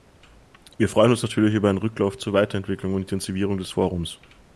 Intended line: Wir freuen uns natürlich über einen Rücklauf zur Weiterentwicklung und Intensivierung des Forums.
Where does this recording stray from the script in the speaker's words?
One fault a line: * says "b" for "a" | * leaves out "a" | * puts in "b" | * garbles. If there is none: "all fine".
all fine